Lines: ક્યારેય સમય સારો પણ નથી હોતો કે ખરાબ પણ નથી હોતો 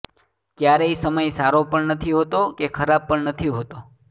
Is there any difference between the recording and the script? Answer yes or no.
no